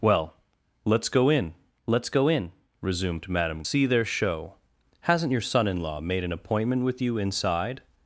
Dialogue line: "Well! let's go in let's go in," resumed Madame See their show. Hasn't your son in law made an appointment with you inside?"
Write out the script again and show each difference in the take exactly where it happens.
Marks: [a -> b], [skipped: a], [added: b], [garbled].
"Well! let's go in let's go in," resumed Madame See their show. Hasn't your son in law made an appointment with you inside?"